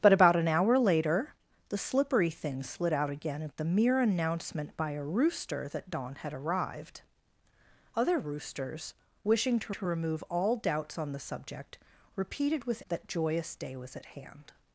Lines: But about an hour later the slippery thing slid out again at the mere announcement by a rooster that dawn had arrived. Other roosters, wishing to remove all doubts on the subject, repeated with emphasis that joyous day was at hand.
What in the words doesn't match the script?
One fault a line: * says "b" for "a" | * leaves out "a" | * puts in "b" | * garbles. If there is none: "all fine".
* puts in "to"
* leaves out "emphasis"